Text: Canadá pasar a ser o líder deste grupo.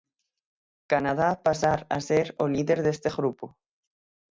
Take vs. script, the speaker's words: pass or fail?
pass